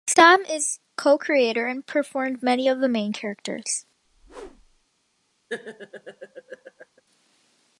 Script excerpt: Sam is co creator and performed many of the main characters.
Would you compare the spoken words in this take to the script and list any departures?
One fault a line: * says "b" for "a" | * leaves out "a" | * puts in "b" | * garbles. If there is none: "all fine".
all fine